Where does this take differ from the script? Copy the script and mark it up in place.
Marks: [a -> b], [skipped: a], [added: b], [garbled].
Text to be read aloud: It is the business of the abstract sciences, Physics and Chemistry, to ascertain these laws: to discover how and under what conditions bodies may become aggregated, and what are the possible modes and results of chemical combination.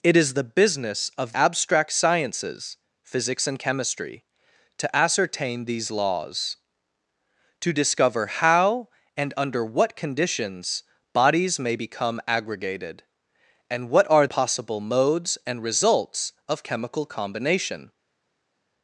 It is the business of [skipped: the] abstract sciences, Physics and Chemistry, to ascertain these laws: to discover how and under what conditions bodies may become aggregated, and what are [skipped: the] possible modes and results of chemical combination.